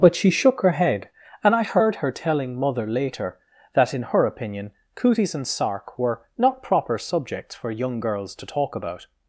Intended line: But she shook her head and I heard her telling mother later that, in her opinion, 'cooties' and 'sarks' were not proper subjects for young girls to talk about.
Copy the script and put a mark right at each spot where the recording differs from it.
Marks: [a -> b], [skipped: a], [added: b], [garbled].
But she shook her head and I heard her telling mother later that, in her opinion, 'cooties' and ['sarks' -> sark] were not proper subjects for young girls to talk about.